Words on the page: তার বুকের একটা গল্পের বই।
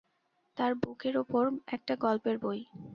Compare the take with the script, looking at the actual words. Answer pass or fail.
fail